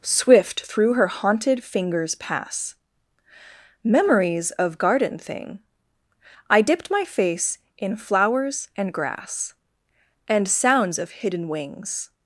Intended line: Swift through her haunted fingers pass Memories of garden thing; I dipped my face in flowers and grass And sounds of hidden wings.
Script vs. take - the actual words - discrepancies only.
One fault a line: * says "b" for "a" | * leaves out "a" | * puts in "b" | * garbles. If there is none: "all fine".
all fine